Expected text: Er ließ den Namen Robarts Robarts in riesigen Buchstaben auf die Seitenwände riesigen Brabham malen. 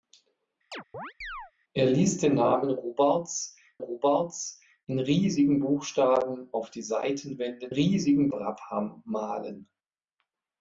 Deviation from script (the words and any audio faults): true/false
true